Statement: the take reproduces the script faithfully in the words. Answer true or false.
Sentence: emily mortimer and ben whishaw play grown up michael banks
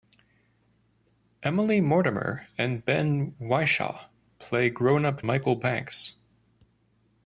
true